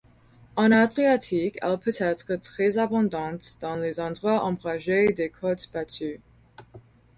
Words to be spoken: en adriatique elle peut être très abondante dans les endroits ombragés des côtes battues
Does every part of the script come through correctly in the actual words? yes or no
yes